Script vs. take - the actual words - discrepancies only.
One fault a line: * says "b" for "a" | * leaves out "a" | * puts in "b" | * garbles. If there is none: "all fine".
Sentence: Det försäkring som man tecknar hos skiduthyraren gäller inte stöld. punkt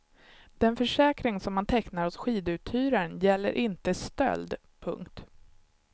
* says "Den" for "Det"